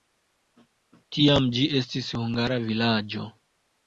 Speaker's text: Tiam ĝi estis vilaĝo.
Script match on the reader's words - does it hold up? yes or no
no